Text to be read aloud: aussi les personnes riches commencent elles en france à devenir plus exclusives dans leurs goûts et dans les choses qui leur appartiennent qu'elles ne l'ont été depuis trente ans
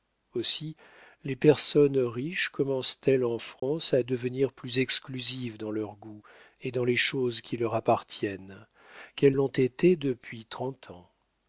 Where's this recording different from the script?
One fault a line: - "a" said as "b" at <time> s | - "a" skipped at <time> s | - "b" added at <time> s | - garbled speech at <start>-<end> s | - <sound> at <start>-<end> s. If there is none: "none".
- dropout at 3.6-3.6 s
- "ne" skipped at 9.4 s